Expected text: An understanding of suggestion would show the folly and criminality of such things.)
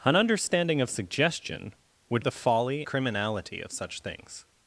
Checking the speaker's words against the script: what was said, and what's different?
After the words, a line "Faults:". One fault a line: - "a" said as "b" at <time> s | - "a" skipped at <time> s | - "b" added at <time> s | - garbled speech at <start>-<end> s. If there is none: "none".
An understanding of suggestion would the folly criminality of such things.)
Faults:
- "show" skipped at 2.2 s
- "and" skipped at 2.8 s